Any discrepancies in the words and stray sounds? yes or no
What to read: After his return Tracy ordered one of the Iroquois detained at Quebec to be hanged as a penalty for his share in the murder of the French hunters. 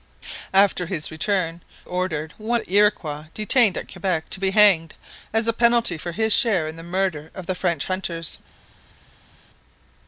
yes